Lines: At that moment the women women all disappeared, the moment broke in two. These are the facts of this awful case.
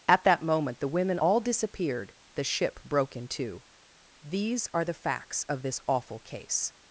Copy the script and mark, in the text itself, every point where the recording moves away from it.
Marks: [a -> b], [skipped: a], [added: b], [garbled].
At that moment the women [skipped: women] all disappeared, the [moment -> ship] broke in two. These are the facts of this awful case.